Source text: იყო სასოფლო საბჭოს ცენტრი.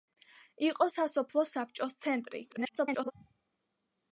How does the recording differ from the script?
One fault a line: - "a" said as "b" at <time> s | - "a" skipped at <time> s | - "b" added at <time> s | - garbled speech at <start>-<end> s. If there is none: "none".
- garbled speech at 2.5-3.1 s